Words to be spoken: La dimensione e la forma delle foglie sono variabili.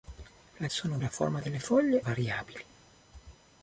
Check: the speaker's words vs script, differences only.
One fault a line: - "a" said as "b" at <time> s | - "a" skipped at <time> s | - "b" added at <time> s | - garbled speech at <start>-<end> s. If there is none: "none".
- "dimensione" said as "sono" at 0.7 s
- "sono" skipped at 2.0 s